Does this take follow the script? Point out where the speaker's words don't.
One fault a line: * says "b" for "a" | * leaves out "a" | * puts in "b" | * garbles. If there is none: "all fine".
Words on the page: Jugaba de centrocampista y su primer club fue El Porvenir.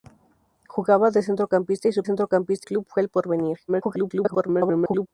* says "centrocampista" for "primer"
* garbles